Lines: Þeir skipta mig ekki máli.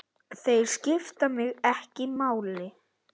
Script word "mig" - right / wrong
right